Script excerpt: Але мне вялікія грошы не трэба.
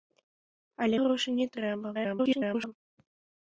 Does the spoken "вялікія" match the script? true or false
false